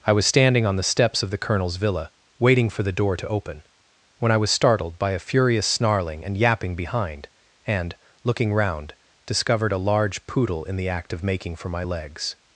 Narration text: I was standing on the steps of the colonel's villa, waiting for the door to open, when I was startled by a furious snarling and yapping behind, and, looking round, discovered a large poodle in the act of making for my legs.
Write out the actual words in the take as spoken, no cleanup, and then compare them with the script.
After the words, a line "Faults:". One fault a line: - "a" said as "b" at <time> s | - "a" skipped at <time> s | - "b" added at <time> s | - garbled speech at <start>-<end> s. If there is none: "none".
I was standing on the steps of the colonel's villa, waiting for the door to open, when I was startled by a furious snarling and yapping behind, and, looking round, discovered a large poodle in the act of making for my legs.
Faults:
none